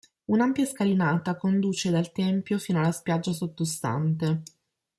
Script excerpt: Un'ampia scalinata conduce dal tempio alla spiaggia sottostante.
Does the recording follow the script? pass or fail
fail